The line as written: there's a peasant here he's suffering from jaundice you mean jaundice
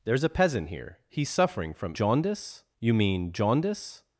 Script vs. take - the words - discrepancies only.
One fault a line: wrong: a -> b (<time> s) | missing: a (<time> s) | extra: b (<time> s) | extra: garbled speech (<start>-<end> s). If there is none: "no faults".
no faults